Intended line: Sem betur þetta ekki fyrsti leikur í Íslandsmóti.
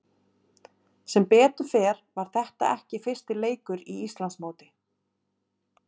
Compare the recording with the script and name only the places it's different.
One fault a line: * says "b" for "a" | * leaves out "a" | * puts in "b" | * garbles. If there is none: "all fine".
* puts in "fer var"